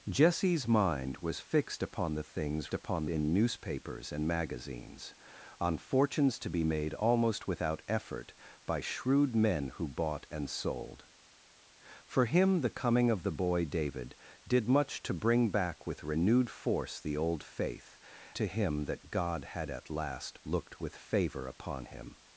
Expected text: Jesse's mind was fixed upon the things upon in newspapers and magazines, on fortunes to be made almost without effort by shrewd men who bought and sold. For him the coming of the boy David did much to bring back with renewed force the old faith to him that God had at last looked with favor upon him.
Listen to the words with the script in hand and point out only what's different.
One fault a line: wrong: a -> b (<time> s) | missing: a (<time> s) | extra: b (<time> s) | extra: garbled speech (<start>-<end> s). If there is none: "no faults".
no faults